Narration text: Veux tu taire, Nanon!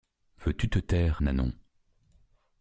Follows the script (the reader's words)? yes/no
no